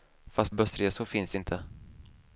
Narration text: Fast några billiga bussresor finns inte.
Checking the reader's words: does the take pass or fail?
fail